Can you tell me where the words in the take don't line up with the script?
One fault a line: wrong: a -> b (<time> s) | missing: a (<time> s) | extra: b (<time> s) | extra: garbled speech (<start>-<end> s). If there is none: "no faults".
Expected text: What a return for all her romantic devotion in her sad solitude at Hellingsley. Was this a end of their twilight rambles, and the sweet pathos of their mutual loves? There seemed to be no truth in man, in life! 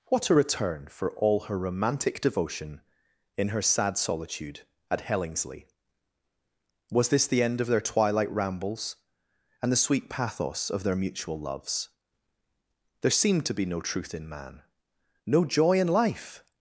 wrong: a -> the (7.3 s)
extra: no joy (15.3 s)